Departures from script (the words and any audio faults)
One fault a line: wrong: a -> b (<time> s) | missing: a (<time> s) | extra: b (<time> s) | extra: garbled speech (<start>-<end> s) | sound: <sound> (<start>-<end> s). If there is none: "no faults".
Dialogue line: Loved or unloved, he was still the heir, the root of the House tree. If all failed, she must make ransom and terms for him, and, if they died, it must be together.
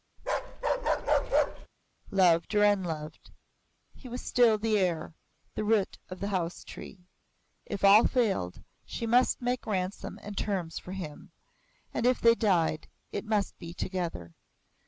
sound: bark (0.2-1.7 s)